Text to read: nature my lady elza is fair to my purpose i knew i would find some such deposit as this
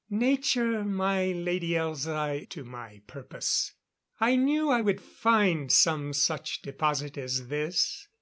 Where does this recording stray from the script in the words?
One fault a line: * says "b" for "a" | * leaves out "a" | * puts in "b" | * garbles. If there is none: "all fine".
* leaves out "is fair"